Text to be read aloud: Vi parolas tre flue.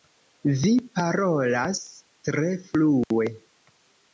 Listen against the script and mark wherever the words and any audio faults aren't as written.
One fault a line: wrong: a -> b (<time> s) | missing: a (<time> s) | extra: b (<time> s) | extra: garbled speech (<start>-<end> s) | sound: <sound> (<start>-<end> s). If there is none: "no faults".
sound: dropout (3.0-3.1 s)